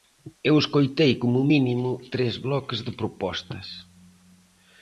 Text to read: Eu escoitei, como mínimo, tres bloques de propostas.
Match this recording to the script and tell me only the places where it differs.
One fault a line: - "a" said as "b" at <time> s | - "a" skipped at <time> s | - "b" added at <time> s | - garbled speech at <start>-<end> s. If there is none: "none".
none